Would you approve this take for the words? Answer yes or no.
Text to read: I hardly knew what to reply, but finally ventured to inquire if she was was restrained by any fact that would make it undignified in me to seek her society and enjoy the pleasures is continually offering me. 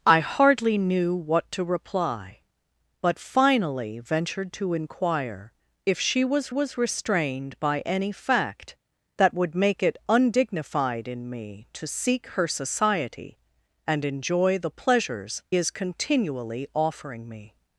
yes